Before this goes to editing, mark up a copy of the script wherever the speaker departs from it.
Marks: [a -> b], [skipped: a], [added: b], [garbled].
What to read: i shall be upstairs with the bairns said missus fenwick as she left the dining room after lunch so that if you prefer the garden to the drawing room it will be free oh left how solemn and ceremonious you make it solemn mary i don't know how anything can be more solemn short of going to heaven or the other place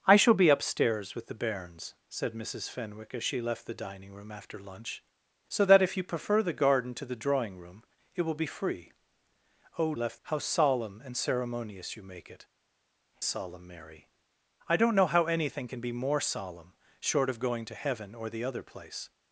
i shall be upstairs with the bairns said missus fenwick as she left the dining room after lunch so that if you prefer the garden to the drawing room it will be free oh left how solemn and ceremonious you make it solemn mary i don't know how anything can be more solemn short of going to heaven or the other place